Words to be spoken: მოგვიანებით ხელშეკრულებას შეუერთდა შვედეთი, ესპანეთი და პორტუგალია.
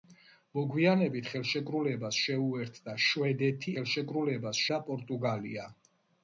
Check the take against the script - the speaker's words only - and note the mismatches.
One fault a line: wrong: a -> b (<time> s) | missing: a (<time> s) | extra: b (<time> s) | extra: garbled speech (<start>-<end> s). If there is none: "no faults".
wrong: ესპანეთი -> ხელშეკრულებას (3.7 s)